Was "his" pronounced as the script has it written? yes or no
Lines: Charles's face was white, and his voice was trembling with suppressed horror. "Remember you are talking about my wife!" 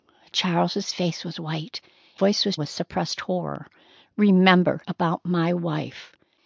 no